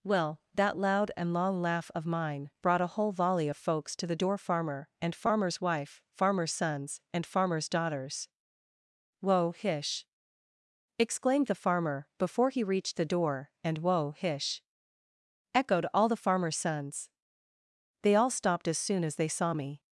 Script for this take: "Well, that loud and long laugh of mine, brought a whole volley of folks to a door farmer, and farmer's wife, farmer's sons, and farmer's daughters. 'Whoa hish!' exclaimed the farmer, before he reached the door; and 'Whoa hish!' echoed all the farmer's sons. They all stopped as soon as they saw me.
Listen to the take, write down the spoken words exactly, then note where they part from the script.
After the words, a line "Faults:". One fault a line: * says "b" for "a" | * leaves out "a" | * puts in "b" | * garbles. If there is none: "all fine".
"Well, that loud and long laugh of mine, brought a whole volley of folks to the door farmer, and farmer's wife, farmer's sons, and farmer's daughters. 'Whoa hish!' exclaimed the farmer, before he reached the door; and 'Whoa hish!' echoed all the farmer's sons. They all stopped as soon as they saw me.
Faults:
* says "the" for "a"